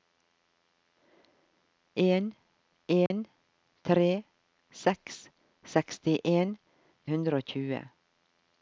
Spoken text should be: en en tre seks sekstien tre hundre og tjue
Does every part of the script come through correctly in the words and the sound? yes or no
no